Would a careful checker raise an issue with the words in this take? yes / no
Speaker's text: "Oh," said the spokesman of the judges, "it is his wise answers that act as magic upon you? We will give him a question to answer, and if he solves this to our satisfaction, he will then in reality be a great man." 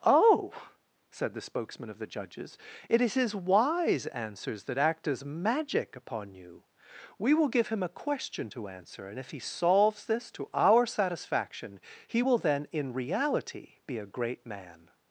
no